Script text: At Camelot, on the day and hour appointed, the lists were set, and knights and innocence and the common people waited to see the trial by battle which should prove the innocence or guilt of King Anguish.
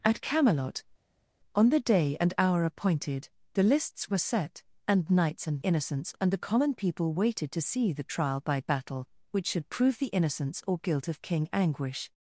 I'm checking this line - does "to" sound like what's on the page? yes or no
yes